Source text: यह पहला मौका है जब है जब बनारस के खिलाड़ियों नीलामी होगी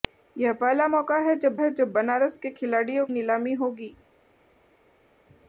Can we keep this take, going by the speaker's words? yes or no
yes